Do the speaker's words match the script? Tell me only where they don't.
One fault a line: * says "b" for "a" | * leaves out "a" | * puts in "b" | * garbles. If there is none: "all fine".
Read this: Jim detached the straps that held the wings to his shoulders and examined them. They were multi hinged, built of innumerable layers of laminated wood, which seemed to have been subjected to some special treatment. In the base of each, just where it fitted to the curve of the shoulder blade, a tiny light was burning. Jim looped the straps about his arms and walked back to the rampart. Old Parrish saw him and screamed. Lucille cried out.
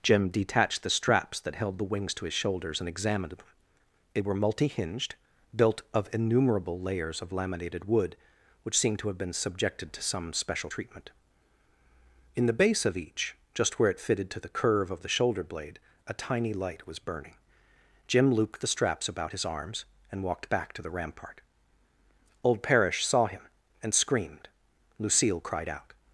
all fine